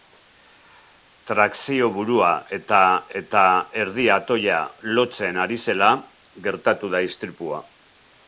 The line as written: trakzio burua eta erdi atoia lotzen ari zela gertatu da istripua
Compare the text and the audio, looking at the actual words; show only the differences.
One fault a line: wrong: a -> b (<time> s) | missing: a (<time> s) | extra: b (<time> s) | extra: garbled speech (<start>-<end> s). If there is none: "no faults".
extra: eta (3.2 s)